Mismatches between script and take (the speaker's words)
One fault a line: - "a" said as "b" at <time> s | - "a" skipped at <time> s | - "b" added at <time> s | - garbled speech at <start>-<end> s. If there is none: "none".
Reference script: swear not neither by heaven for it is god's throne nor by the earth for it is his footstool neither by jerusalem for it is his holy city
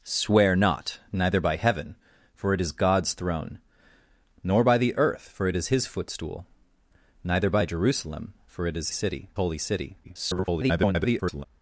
- "his" said as "city" at 8.9 s
- garbled speech at 10.0-11.5 s